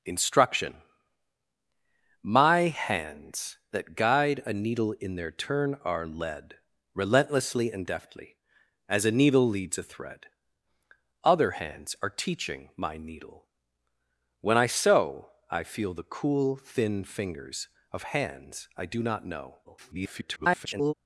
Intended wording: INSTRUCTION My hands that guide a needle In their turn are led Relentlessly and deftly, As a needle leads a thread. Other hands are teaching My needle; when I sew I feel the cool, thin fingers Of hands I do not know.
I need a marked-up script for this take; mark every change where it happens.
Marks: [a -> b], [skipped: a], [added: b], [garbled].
INSTRUCTION My hands that guide a needle In their turn are led Relentlessly and deftly, As a needle leads a thread. Other hands are teaching My needle; when I sew I feel the cool, thin fingers Of hands I do not know. [garbled]